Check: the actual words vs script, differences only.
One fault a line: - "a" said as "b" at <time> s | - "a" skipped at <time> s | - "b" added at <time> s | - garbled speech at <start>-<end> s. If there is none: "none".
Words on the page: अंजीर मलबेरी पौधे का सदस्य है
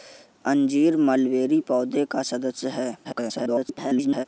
- garbled speech at 3.0-4.3 s